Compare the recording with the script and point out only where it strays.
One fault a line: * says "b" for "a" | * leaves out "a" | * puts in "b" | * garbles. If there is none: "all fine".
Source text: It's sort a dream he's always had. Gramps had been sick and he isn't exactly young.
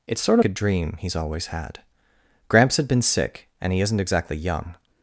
all fine